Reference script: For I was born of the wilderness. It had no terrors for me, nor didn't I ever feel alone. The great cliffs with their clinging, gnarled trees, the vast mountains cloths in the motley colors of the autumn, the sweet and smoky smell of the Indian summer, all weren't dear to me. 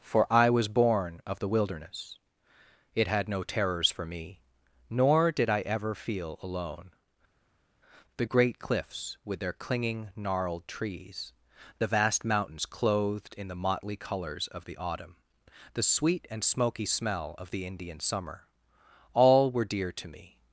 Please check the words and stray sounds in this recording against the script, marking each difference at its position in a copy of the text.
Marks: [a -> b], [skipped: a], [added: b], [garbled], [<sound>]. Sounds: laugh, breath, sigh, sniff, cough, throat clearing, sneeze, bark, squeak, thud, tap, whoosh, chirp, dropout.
For I was born of the wilderness. It had no terrors for me, nor [didn't -> did] I ever feel alone. The great cliffs with their clinging, gnarled trees, the vast mountains [cloths -> clothed] in the motley colors of the autumn, the sweet and smoky smell of the Indian summer, all [weren't -> were] dear to me.